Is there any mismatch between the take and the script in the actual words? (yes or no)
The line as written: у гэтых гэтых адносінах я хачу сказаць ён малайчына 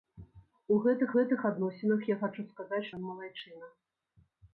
no